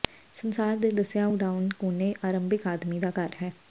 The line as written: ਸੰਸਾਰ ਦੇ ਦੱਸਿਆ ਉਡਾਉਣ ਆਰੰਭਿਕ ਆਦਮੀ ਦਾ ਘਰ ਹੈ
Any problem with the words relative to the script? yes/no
yes